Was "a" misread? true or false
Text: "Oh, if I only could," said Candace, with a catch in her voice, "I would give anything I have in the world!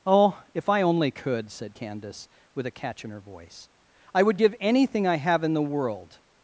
false